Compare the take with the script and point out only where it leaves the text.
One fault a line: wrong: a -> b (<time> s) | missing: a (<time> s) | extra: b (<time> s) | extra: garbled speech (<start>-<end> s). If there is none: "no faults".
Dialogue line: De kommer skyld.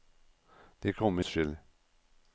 no faults